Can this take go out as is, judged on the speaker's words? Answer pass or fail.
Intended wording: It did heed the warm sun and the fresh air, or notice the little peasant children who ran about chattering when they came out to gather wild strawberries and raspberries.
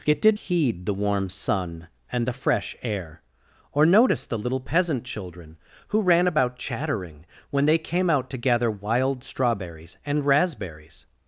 pass